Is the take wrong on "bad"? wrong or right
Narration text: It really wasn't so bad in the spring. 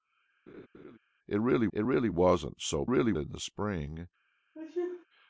wrong